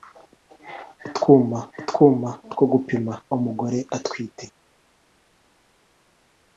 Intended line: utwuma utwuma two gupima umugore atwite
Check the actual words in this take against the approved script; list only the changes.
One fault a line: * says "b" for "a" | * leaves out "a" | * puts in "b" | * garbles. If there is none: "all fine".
all fine